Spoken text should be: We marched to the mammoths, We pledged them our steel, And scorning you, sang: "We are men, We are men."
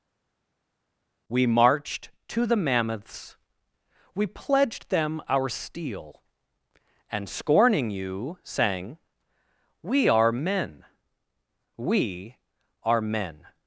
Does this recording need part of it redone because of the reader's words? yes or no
no